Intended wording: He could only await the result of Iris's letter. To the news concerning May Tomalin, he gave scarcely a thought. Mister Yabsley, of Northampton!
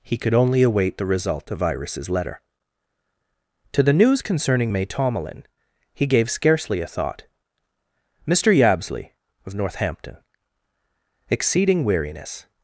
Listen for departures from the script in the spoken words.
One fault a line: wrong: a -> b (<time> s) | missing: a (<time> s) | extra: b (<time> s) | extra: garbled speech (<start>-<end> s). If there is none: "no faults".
extra: Exceeding weariness (11.3 s)